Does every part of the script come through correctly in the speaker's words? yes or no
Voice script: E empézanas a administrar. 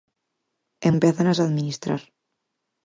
yes